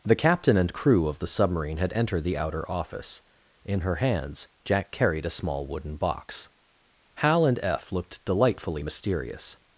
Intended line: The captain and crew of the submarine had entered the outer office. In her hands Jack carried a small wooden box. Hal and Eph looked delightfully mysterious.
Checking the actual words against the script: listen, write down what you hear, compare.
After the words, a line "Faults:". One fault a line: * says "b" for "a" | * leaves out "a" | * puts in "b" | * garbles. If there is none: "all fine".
The captain and crew of the submarine had entered the outer office. In her hands Jack carried a small wooden box. Hal and Eph looked delightfully mysterious.
Faults:
all fine